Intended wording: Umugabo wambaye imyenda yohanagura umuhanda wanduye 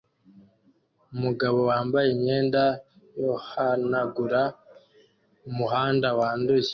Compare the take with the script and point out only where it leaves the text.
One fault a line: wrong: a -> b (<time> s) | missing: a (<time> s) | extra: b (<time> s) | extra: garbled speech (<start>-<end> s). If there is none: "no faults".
no faults